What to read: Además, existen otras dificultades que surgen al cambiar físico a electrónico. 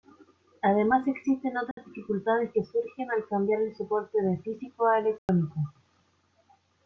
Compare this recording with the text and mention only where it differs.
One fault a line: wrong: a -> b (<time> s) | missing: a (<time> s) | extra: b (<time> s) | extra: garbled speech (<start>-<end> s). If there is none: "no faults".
extra: el soporte de (3.6 s)